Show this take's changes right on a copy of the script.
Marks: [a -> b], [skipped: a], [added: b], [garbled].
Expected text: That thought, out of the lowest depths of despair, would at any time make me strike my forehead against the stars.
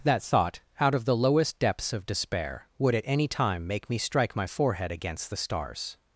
That thought, out of the lowest depths of despair, would at any time make me strike my forehead against the stars.